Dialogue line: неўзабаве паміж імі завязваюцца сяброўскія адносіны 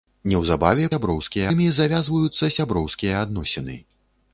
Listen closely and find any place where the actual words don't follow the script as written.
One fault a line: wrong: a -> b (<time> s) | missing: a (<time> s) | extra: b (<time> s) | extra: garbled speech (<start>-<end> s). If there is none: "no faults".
wrong: паміж -> сяброўскія (0.9 s)